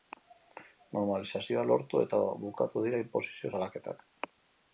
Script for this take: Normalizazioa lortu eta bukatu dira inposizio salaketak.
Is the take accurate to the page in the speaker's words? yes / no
yes